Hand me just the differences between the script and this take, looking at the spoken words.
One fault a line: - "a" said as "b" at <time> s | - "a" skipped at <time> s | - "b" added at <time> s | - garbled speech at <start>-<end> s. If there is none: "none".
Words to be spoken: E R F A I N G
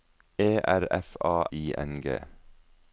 none